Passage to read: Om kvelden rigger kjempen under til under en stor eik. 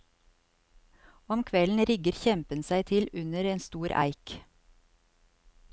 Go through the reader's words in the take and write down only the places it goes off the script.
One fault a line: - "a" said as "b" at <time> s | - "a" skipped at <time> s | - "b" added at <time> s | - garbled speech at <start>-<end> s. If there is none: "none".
- "under" said as "seg" at 2.7 s